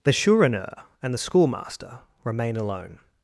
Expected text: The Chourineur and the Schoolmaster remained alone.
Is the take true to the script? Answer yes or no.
no